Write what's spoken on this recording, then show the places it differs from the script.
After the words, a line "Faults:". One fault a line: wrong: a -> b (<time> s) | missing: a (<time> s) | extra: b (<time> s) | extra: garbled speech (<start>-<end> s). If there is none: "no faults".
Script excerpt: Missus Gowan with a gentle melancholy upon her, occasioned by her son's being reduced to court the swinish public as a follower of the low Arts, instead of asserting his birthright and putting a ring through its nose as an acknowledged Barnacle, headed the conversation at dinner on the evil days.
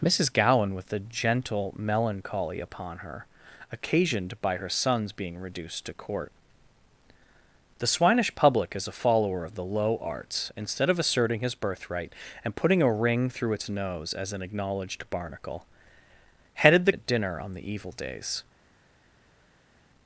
Missus Gowan with a gentle melancholy upon her, occasioned by her son's being reduced to court the swinish public as a follower of the low Arts, instead of asserting his birthright and putting a ring through its nose as an acknowledged Barnacle, headed the at dinner on the evil days.
Faults:
missing: conversation (16.9 s)